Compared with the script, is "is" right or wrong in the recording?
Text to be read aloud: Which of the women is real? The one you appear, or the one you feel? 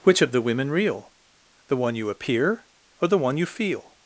wrong